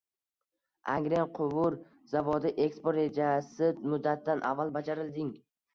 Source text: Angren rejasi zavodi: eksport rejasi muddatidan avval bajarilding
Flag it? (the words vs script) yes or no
yes